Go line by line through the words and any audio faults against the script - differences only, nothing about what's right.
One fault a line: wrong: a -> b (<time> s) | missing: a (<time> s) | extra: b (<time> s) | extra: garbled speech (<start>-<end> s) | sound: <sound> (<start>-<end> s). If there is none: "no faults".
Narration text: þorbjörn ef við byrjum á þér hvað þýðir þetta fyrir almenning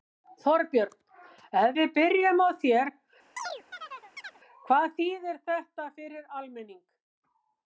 sound: chirp (3.4-4.4 s)